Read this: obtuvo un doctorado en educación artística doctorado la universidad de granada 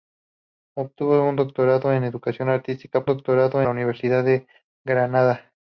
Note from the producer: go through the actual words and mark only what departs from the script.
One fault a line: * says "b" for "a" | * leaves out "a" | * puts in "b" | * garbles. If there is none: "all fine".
all fine